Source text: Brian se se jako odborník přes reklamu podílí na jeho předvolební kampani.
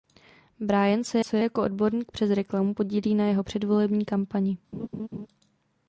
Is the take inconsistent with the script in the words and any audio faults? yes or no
yes